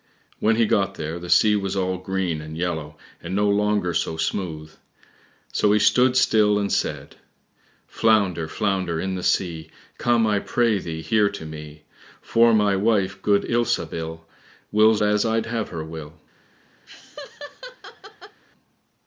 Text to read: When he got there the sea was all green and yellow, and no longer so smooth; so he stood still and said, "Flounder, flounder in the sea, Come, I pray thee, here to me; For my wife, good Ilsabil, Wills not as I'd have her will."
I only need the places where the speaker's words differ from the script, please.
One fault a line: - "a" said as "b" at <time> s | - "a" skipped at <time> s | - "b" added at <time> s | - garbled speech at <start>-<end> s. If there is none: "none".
- "not" skipped at 15.0 s